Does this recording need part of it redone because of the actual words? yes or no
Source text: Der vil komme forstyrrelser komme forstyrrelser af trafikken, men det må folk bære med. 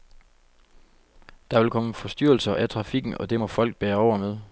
yes